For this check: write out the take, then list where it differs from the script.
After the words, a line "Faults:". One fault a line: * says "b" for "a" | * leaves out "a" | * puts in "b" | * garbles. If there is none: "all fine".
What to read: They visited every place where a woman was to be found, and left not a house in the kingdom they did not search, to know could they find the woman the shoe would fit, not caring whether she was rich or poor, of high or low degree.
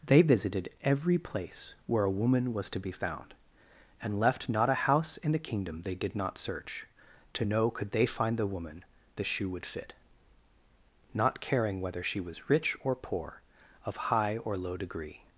They visited every place where a woman was to be found, and left not a house in the kingdom they did not search, to know could they find the woman the shoe would fit, not caring whether she was rich or poor, of high or low degree.
Faults:
all fine